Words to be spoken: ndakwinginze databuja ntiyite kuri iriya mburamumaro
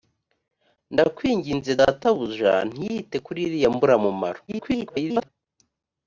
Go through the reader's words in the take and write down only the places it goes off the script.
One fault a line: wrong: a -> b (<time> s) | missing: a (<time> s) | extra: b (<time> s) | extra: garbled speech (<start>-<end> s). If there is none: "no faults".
extra: garbled speech (4.5-5.3 s)